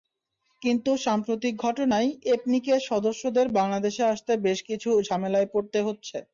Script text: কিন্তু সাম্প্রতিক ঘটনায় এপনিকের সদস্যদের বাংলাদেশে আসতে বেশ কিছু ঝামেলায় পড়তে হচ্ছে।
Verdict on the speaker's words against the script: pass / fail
pass